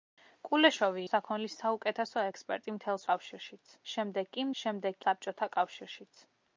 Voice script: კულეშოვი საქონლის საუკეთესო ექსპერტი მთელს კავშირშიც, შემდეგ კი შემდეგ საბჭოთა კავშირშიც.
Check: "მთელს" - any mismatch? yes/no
no